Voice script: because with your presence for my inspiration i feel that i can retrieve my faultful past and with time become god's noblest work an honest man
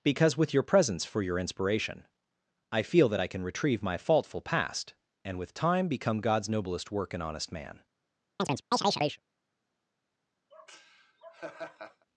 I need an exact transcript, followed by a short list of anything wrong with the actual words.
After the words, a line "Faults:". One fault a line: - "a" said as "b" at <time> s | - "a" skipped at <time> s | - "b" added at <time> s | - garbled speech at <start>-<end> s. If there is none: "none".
because with your presence for your inspiration i feel that i can retrieve my faultful past and with time become god's noblest work an honest man
Faults:
- "my" said as "your" at 1.2 s